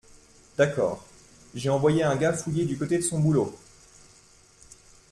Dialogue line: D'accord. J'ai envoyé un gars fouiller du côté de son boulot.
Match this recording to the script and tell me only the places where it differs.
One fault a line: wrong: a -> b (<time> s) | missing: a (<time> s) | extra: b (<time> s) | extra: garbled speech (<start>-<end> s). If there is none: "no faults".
no faults